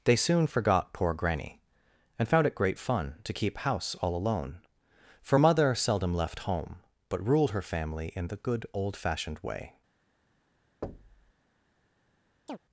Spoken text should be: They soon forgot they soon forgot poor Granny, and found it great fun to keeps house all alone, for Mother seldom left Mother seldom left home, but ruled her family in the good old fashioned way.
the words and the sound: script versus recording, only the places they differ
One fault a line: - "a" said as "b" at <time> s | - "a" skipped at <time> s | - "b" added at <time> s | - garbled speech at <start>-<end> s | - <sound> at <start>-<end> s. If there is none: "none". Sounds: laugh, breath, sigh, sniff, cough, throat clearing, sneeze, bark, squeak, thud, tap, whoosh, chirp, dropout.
- "they soon forgot" skipped at 0.9 s
- "keeps" said as "keep" at 3.3 s
- "Mother seldom left" skipped at 6.4 s
- thud at 10.8-11.3 s
- chirp at 12.5-12.6 s